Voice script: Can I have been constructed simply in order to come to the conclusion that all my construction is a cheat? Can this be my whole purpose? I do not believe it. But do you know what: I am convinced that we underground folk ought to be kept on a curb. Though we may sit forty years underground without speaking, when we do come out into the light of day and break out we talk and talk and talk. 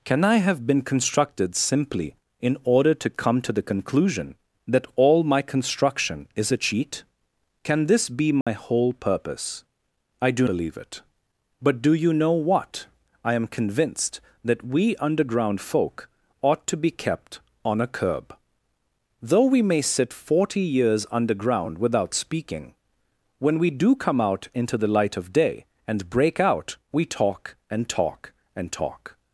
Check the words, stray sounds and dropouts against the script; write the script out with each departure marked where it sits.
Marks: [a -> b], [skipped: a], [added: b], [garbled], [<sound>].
Can I have been constructed simply in order to come to the conclusion that all my construction is a cheat? Can this be my [dropout] whole purpose? I do [skipped: not] believe it. But do you know what: I am convinced that we underground folk ought to be kept on a curb. Though we may sit forty years underground without speaking, when we do come out into the light of day and break out we talk and talk and talk.